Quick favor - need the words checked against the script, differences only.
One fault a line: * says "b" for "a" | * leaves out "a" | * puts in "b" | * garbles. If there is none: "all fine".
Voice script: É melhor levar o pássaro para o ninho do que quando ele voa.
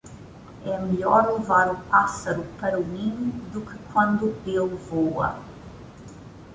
all fine